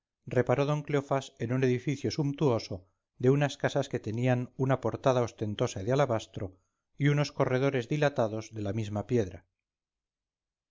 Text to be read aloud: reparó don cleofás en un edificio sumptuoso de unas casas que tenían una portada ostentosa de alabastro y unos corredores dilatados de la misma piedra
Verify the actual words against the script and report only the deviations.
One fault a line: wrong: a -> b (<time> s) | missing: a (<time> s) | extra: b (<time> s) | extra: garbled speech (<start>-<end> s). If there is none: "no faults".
no faults